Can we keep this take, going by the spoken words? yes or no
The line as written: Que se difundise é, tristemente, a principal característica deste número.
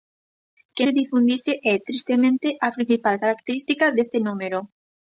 yes